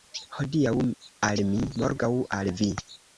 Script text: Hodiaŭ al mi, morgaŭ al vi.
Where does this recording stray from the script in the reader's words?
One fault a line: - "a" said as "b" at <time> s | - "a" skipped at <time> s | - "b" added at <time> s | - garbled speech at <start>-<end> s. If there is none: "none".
none